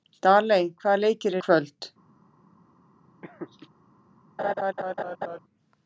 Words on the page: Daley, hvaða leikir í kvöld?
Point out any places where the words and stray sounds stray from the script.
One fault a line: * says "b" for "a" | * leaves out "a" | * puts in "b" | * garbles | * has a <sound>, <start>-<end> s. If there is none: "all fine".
* has a laugh, 3.2-3.7 s
* has a laugh, 4.4-5.4 s